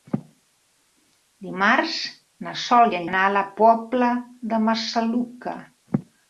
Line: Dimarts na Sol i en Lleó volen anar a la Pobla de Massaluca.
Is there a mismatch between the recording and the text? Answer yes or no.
yes